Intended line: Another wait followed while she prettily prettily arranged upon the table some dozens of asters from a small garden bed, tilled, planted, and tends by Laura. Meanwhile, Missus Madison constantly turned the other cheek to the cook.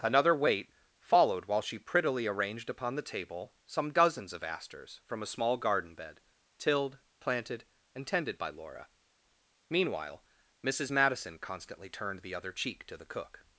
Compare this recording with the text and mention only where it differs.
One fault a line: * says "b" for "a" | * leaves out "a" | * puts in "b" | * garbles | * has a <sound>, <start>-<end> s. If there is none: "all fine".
* leaves out "prettily"
* says "tended" for "tends"